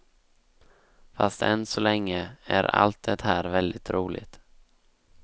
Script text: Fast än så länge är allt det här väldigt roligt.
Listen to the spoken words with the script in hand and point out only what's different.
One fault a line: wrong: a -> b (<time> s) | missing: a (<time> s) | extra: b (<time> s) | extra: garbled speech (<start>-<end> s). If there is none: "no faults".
no faults